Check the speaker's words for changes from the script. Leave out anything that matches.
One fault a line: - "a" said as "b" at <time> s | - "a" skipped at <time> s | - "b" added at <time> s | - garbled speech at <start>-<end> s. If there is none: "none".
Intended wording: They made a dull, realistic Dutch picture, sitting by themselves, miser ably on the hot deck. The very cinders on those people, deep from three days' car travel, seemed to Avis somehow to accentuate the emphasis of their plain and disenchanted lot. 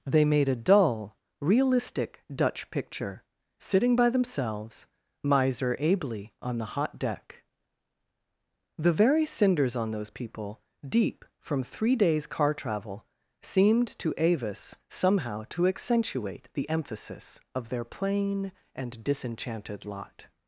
none